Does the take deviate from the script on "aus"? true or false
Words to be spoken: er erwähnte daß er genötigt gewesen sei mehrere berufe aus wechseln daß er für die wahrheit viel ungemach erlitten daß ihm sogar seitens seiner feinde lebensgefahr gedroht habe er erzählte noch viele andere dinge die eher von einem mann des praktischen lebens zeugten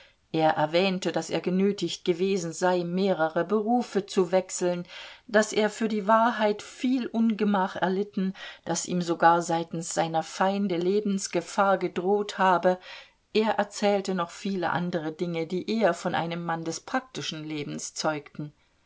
true